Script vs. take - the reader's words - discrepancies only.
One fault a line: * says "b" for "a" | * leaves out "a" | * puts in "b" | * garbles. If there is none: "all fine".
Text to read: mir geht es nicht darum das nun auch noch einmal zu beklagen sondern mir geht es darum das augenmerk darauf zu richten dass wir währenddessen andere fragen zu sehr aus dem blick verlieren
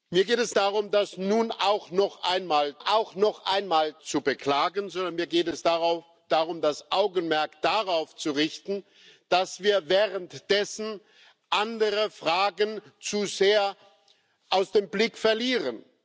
* leaves out "nicht"
* puts in "auch noch einmal"